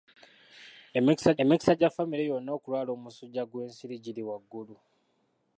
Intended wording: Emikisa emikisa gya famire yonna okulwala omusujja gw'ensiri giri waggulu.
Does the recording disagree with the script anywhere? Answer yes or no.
no